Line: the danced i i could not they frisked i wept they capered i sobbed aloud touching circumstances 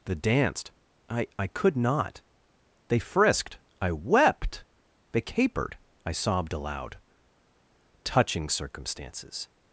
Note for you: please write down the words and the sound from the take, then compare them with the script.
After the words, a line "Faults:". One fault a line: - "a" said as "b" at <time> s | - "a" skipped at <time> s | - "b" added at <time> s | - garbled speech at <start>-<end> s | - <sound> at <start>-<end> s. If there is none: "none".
the danced i i could not they frisked i wept they capered i sobbed aloud touching circumstances
Faults:
none